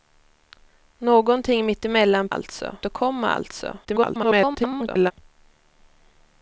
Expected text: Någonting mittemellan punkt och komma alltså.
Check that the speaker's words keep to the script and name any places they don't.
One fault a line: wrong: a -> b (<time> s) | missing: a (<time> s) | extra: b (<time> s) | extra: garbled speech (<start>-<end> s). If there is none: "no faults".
wrong: punkt -> alltså (2.3 s)
extra: garbled speech (3.8-5.1 s)